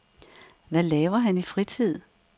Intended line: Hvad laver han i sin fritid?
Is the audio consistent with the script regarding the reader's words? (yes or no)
no